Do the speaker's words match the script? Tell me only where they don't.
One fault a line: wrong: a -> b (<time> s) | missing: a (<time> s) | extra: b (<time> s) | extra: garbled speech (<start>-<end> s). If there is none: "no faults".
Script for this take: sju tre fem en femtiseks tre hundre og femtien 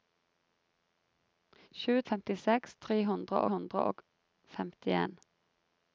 missing: tre fem en (1.9 s)
extra: hundre (3.5 s)